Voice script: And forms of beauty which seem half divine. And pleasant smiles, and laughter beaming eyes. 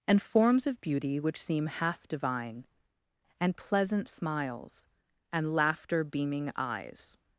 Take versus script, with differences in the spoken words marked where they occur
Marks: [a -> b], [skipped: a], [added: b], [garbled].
And forms of beauty which seem half divine. And pleasant smiles, and laughter beaming eyes.